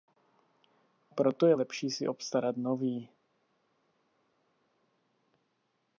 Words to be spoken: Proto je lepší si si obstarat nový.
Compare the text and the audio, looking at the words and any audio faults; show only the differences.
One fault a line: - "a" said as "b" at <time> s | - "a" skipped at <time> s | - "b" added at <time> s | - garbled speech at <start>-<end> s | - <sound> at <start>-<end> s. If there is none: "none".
- "si" skipped at 2.1 s